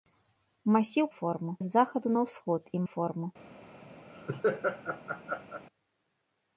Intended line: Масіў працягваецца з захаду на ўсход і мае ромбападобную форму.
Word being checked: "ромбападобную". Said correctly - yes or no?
no